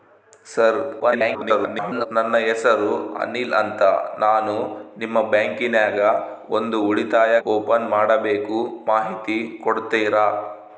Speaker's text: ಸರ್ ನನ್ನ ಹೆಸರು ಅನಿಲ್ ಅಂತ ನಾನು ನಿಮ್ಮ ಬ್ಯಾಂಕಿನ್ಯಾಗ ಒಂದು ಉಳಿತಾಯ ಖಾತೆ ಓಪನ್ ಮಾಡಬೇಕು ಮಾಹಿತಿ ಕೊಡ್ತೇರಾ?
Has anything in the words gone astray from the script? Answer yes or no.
yes